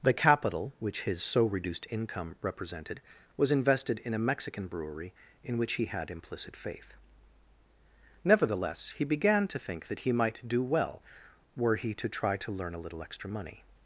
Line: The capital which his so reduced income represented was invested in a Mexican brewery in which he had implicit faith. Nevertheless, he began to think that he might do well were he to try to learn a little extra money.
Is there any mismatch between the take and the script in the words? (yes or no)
no